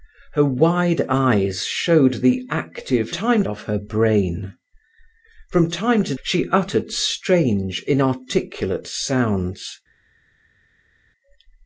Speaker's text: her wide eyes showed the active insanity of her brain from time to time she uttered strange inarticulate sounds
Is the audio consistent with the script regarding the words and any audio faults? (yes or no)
no